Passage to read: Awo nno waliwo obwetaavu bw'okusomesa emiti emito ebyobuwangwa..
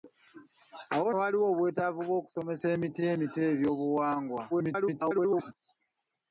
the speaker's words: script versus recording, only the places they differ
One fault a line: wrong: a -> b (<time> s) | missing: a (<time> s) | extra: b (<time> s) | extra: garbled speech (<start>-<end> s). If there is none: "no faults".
missing: nno (1.1 s)
extra: garbled speech (4.5-5.5 s)